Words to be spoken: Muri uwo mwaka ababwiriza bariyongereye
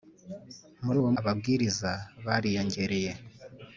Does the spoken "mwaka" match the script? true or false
false